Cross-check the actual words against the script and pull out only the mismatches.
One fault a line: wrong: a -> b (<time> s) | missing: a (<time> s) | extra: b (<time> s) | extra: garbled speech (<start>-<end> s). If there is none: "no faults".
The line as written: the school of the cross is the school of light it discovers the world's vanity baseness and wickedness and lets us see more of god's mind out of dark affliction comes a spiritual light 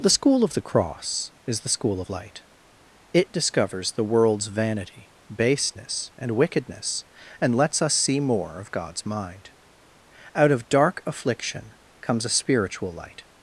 no faults